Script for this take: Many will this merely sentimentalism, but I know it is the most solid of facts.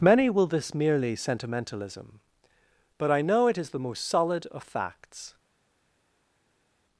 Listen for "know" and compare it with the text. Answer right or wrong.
right